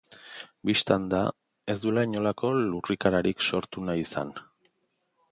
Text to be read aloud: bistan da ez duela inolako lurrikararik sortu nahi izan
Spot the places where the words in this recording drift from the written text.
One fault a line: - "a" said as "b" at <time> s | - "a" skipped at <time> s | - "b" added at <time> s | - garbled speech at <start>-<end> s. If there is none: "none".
none